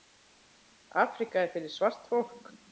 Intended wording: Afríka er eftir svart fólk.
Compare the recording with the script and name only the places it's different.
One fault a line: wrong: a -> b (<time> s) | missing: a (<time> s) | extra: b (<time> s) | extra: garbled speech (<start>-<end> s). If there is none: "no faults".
wrong: eftir -> fyrir (1.6 s)